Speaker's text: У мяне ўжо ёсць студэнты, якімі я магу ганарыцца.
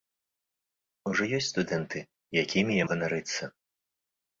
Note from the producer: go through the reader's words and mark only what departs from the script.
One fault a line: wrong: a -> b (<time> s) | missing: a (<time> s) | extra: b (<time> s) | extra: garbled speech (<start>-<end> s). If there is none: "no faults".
missing: мяне (1.1 s)
missing: магу (2.9 s)